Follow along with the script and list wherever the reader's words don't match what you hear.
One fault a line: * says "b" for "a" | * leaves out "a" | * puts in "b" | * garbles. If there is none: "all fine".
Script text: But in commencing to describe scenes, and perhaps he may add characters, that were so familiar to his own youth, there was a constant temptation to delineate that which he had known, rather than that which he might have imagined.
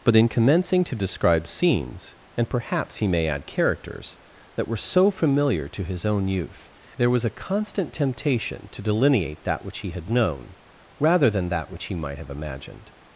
all fine